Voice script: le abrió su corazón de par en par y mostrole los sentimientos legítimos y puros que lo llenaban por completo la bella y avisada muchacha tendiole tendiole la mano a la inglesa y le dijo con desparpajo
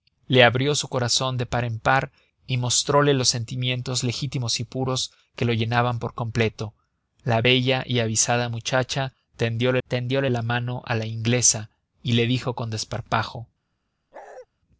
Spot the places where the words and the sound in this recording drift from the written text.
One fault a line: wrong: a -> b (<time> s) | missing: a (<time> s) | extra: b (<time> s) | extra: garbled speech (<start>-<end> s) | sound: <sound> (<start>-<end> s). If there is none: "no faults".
sound: bark (14.1-14.5 s)